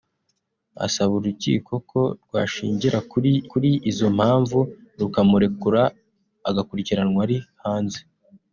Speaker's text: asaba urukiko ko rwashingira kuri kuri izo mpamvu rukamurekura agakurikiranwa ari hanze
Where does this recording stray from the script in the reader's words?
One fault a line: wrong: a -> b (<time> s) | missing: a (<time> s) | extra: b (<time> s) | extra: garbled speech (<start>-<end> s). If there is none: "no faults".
no faults